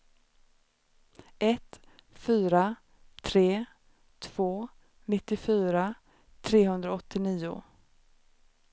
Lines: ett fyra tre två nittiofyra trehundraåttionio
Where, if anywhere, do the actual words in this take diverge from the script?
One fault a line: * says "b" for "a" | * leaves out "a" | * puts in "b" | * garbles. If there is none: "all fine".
all fine